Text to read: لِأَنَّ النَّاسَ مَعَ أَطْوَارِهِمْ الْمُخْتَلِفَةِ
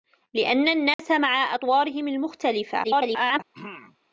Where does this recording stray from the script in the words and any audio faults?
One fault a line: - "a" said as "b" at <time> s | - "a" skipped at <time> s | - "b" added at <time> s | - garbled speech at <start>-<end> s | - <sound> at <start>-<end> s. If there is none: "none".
- dropout at 0.9-1.0 s
- garbled speech at 2.8-3.4 s
- throat clearing at 3.5-4.0 s